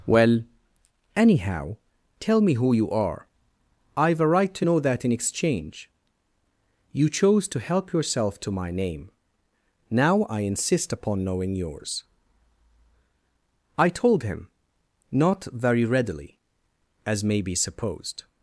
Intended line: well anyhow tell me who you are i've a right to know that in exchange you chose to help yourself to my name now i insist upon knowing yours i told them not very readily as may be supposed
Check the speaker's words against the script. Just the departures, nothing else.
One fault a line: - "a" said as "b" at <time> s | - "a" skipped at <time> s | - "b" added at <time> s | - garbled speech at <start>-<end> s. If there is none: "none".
- "them" said as "him" at 14.2 s